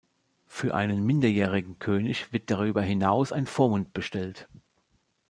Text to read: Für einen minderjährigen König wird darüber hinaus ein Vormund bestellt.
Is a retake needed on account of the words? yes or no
no